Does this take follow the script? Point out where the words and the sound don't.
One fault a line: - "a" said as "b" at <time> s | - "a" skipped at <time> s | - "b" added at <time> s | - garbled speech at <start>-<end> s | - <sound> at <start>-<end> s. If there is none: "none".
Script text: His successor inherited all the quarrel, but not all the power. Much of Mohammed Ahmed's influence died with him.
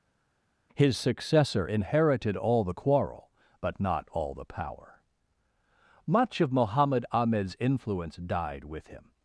none